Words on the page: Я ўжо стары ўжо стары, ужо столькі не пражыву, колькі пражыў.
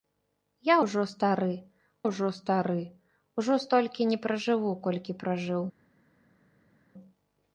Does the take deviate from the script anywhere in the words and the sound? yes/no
no